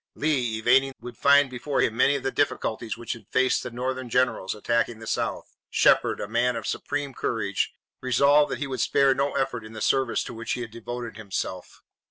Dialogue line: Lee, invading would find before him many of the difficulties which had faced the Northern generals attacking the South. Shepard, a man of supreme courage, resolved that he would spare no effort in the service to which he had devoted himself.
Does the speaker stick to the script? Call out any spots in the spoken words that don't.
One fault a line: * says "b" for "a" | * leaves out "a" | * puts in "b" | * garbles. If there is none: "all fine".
all fine